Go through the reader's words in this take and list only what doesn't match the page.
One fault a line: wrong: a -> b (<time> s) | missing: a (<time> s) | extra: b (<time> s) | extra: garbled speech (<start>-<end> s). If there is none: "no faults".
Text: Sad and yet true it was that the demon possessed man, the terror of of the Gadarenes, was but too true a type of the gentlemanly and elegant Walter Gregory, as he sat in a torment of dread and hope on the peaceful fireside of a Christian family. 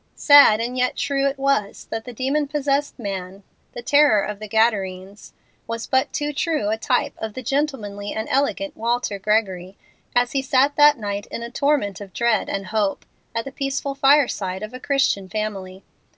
missing: of (4.4 s)
extra: that night (10.8 s)
wrong: on -> at (13.3 s)